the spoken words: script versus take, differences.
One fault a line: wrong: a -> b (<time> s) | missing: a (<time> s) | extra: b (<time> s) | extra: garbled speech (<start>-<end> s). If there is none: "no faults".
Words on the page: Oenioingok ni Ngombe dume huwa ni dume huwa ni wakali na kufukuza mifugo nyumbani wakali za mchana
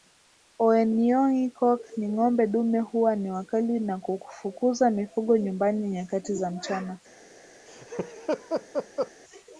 missing: dume huwa ni (3.3 s)
wrong: wakali -> nyakati (5.9 s)